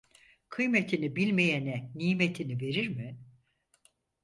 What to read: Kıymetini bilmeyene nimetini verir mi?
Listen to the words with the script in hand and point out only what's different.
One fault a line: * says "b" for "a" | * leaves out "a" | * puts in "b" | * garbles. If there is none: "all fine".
all fine